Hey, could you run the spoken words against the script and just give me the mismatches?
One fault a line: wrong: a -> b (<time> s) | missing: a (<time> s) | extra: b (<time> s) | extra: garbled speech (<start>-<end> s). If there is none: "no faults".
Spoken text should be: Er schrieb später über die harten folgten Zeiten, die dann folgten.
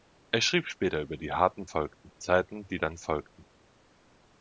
no faults